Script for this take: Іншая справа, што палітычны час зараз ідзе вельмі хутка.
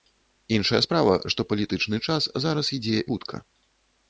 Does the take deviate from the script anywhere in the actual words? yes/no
yes